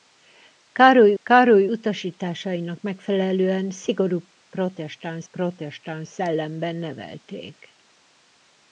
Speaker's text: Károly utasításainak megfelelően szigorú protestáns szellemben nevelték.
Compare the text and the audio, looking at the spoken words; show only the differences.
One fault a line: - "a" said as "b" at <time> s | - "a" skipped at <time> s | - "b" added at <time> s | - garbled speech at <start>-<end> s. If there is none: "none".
- "károly" added at 1.2 s
- "protestáns" added at 5.3 s